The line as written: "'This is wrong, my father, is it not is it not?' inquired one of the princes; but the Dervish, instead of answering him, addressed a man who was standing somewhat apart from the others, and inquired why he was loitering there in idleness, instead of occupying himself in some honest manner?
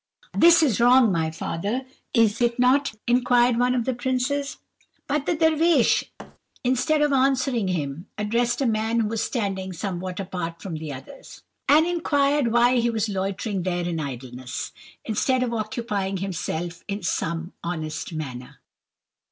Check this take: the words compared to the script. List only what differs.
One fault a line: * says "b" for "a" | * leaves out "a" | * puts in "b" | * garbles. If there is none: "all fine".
* leaves out "is it not"